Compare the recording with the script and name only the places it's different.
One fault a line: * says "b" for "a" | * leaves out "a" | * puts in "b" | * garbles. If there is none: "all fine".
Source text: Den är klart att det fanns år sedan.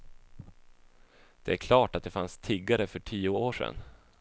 * says "Det" for "Den"
* puts in "tiggare för tio"